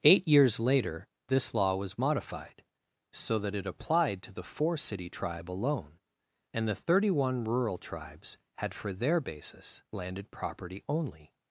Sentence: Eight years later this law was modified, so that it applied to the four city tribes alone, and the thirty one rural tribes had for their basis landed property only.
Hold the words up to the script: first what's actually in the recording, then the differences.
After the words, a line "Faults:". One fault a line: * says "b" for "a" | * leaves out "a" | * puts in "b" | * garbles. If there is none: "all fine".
Eight years later this law was modified, so that it applied to the four city tribe alone, and the thirty one rural tribes had for their basis landed property only.
Faults:
* says "tribe" for "tribes"